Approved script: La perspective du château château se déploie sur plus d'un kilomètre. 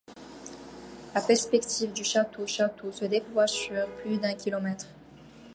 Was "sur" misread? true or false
false